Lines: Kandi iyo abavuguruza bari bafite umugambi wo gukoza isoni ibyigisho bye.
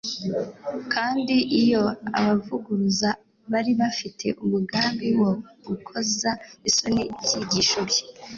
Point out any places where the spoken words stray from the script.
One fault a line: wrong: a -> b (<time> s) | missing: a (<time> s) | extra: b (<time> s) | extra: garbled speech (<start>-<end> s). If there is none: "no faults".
no faults